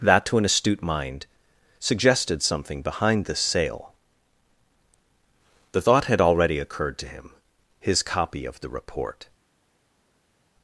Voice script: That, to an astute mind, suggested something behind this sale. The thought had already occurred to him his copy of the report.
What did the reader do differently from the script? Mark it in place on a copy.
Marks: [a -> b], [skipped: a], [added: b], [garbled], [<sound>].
That, to an astute mind, suggested something behind this sale. The thought had already occurred to him his copy of the report.